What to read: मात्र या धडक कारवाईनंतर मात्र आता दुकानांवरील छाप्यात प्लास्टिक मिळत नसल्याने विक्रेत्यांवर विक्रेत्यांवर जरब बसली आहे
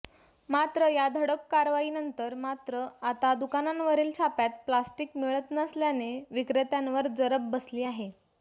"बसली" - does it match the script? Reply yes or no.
yes